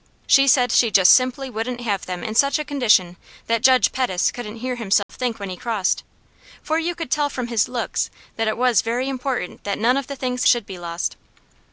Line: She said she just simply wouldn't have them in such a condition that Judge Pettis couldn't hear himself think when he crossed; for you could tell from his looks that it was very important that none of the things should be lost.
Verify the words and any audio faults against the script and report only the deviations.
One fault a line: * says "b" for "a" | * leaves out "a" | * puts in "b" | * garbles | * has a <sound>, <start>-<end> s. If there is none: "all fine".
* has a dropout, 5.0-5.1 s